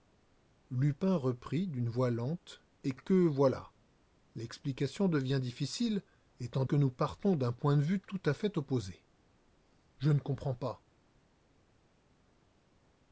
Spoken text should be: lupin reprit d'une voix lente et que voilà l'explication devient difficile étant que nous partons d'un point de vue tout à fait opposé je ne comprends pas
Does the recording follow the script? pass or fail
pass